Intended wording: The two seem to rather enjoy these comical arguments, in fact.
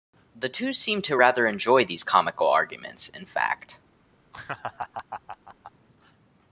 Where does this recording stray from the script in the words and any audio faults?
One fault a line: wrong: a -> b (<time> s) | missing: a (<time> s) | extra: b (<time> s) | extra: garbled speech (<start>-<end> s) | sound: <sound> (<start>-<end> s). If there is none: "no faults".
sound: laugh (4.3-5.7 s)